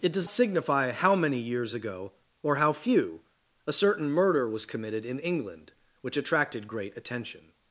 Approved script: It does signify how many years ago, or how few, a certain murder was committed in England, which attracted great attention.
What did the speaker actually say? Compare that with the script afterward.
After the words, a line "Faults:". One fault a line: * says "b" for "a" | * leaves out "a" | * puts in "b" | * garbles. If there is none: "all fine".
It does signify how many years ago, or how few, a certain murder was committed in England, which attracted great attention.
Faults:
all fine